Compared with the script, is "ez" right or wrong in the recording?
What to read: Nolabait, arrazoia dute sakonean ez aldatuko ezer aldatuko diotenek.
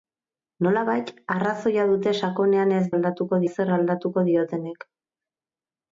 right